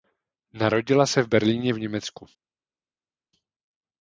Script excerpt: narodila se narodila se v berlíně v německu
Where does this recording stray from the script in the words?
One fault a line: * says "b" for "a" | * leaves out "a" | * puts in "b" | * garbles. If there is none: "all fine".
* leaves out "narodila se"